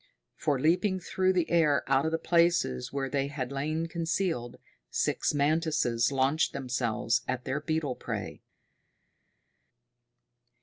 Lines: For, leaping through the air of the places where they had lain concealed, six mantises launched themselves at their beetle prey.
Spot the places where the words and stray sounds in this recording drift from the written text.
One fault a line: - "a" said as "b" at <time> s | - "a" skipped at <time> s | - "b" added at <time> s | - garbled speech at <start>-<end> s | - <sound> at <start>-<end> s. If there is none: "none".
- "out" added at 1.9 s